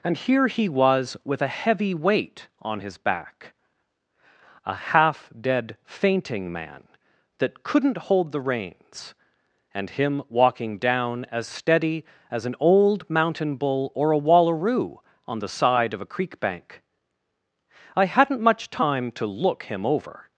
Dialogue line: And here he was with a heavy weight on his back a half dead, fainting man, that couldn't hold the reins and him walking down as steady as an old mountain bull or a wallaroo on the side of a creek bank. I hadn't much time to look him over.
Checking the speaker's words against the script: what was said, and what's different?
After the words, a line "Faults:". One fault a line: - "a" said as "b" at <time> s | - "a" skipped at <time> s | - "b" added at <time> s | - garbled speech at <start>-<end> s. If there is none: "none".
And here he was with a heavy weight on his back a half dead, fainting man, that couldn't hold the reins and him walking down as steady as an old mountain bull or a wallaroo on the side of a creek bank. I hadn't much time to look him over.
Faults:
none